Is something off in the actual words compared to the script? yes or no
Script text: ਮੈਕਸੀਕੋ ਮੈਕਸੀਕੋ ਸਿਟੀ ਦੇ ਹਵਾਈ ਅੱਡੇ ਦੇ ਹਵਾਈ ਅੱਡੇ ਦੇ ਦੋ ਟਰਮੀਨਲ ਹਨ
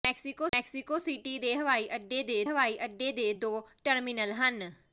no